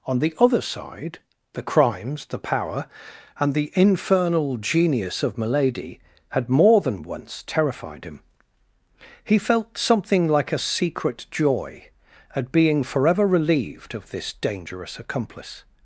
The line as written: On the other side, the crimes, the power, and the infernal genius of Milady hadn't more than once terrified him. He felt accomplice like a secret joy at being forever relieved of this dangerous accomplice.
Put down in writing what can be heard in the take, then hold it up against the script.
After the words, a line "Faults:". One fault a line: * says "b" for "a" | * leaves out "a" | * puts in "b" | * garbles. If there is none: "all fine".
On the other side, the crimes, the power, and the infernal genius of Milady had more than once terrified him. He felt something like a secret joy at being forever relieved of this dangerous accomplice.
Faults:
* says "had" for "hadn't"
* says "something" for "accomplice"